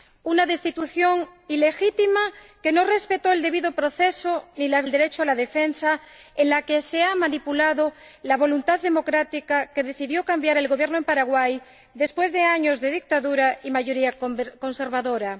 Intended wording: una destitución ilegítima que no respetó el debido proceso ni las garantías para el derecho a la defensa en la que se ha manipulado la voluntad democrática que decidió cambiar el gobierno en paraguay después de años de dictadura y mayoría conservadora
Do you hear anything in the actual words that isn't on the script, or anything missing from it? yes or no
yes